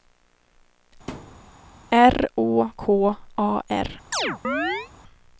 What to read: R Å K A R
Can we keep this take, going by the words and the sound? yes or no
no